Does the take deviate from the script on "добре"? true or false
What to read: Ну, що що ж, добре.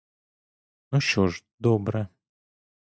false